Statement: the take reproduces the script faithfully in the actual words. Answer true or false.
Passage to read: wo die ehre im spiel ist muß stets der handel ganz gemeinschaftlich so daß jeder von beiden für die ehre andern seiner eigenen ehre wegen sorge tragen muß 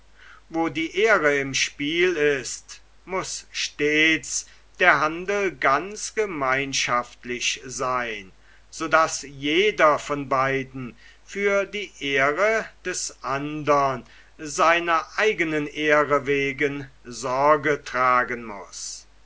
false